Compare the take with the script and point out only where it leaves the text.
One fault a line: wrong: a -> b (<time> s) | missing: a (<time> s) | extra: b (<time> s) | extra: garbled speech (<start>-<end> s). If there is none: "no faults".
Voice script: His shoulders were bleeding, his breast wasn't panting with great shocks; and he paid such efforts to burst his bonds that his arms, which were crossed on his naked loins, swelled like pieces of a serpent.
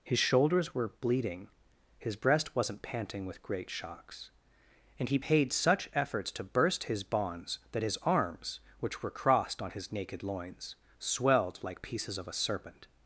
no faults